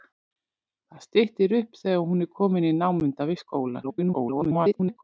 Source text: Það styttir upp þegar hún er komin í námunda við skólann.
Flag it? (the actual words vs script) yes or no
yes